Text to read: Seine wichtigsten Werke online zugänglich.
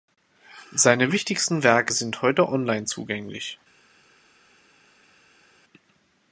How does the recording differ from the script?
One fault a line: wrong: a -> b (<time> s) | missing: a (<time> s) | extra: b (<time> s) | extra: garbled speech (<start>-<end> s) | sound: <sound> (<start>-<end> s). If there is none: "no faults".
extra: sind heute (1.9 s)